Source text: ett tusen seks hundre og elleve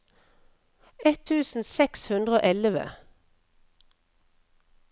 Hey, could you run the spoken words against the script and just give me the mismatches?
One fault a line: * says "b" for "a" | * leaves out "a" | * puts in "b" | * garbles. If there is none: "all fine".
all fine